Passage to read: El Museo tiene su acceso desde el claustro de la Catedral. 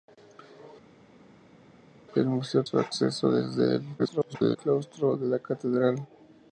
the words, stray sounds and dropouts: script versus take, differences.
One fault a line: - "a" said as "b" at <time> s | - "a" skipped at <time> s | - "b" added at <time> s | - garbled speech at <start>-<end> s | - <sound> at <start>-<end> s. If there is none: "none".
- "tiene" skipped at 2.6 s
- garbled speech at 4.0-4.6 s